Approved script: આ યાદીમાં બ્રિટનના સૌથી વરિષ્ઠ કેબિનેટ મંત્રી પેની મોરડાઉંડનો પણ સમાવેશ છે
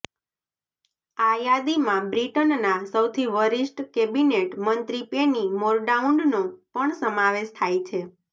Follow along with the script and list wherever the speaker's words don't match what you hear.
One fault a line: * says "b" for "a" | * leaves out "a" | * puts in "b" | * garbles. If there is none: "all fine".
* puts in "થાય"